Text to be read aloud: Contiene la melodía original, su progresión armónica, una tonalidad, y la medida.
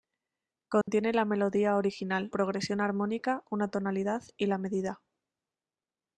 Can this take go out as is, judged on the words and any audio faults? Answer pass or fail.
fail